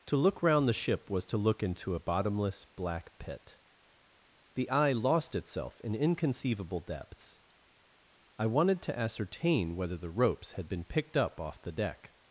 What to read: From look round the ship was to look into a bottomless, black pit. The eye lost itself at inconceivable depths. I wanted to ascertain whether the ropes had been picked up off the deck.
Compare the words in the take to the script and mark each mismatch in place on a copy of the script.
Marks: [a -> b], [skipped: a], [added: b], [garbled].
[From -> To] look round the ship was to look into a bottomless, black pit. The eye lost itself [at -> in] inconceivable depths. I wanted to ascertain whether the ropes had been picked up off the deck.